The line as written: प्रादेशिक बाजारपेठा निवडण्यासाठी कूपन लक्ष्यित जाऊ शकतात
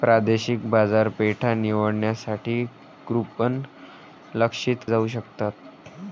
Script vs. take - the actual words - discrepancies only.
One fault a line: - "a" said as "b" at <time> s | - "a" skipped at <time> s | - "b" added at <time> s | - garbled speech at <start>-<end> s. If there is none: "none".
none